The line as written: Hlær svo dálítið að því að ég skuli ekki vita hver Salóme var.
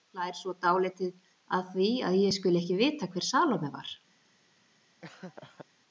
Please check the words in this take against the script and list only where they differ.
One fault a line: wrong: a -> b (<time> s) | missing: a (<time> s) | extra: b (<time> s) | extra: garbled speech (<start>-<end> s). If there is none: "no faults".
no faults